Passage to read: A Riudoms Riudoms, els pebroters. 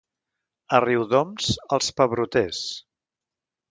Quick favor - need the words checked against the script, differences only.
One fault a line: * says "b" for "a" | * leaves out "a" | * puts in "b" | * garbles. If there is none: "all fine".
* leaves out "Riudoms"